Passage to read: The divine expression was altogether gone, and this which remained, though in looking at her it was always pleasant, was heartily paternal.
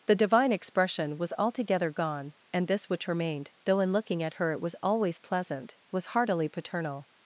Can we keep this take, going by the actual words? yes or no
yes